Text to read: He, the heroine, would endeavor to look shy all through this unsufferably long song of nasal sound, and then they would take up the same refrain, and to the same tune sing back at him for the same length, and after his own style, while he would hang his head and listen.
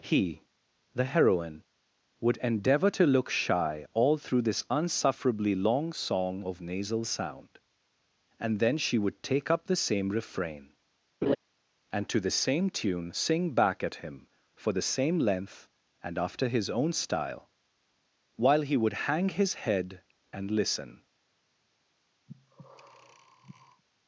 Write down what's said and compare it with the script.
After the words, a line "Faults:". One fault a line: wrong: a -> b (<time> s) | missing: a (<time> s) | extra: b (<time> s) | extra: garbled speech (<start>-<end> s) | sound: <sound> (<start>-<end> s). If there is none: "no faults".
He, the heroine, would endeavor to look shy all through this unsufferably long song of nasal sound, and then she would take up the same refrain, and to the same tune sing back at him for the same length, and after his own style, while he would hang his head and listen.
Faults:
wrong: they -> she (8.8 s)
sound: laugh (11.2-11.4 s)
sound: breath (22.3-23.8 s)